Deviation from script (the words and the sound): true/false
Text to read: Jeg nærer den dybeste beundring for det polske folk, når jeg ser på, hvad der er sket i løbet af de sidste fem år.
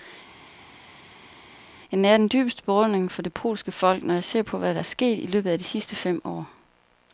false